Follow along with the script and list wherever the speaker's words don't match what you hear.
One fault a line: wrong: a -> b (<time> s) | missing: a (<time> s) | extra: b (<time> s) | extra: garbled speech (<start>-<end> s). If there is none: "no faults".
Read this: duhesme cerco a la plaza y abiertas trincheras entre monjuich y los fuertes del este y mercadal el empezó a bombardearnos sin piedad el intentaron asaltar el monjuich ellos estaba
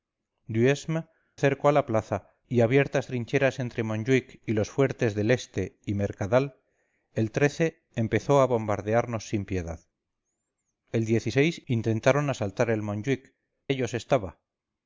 no faults